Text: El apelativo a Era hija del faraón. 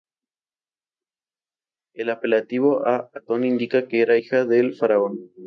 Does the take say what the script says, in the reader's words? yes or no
no